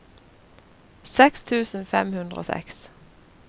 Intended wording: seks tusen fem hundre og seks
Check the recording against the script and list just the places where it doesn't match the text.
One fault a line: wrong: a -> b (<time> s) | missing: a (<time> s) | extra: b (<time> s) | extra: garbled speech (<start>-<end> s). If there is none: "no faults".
no faults